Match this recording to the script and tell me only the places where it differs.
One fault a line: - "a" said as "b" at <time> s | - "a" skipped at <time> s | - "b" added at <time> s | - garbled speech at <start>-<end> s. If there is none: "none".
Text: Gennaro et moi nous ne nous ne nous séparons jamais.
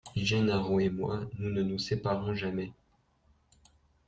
- "ne nous" skipped at 1.8 s